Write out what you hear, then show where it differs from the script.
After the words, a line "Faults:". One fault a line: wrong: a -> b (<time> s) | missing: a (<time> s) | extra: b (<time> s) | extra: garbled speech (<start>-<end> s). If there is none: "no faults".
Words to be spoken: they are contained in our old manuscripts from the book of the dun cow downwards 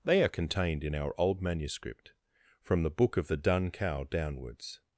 they are contained in our old manuscript from the book of the dun cow downwards
Faults:
wrong: manuscripts -> manuscript (1.4 s)